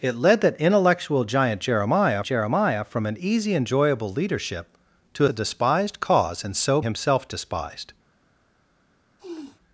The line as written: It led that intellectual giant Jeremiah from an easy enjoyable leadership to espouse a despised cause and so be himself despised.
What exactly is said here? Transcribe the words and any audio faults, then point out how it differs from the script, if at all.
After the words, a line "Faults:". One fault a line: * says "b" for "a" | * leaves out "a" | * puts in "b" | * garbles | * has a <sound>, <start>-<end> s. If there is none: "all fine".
It led that intellectual giant Jeremiah Jeremiah from an easy enjoyable leadership to a despised cause and so himself despised.
Faults:
* puts in "Jeremiah"
* leaves out "espouse"
* leaves out "be"
* has a sniff, 9.2-9.6 s